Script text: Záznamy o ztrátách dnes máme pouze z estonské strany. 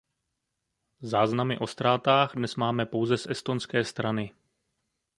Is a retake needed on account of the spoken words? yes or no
no